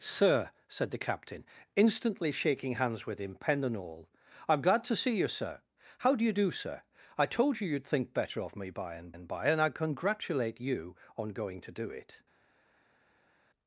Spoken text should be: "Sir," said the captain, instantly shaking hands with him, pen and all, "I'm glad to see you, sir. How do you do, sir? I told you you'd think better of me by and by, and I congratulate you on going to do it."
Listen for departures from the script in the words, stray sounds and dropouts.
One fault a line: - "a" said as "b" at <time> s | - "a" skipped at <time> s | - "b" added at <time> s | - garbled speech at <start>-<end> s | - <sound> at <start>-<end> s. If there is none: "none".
- "and" added at 9.1 s